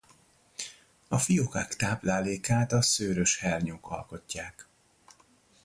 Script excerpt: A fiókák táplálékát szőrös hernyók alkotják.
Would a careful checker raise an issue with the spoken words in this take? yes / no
yes